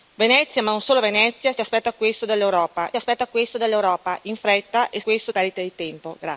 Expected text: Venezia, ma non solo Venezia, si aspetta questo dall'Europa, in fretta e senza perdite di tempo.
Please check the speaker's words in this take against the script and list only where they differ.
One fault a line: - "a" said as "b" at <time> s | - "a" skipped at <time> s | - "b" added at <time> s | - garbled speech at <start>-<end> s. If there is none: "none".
- "aspetta questo dall'Europa" added at 3.0 s
- "senza" said as "questo" at 5.0 s